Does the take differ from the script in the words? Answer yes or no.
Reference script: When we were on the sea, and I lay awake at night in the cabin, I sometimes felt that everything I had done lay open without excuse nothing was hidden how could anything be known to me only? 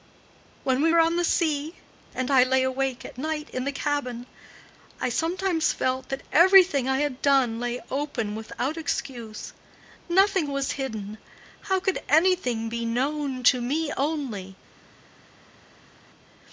no